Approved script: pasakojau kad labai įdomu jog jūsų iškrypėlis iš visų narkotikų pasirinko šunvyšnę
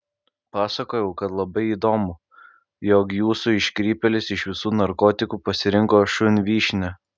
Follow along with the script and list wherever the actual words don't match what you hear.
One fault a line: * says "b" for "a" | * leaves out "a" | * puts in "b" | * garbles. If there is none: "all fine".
all fine